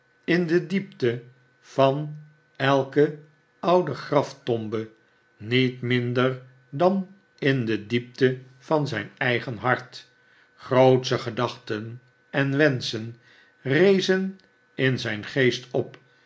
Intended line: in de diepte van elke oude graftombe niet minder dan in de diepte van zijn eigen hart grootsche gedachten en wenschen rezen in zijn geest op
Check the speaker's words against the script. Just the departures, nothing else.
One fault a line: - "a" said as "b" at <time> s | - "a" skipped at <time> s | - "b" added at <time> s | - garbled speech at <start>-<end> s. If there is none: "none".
none